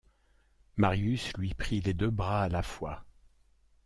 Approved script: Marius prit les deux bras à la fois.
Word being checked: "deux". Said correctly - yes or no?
yes